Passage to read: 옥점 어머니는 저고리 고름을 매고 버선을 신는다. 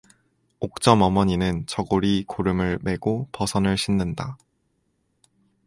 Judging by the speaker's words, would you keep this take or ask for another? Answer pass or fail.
pass